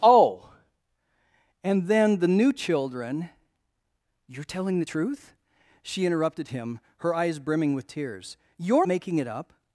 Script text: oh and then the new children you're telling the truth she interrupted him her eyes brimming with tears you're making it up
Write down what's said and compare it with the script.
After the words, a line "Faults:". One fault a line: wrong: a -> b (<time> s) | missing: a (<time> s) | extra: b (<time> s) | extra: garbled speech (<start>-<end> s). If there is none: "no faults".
oh and then the new children you're telling the truth she interrupted him her eyes brimming with tears you're making it up
Faults:
no faults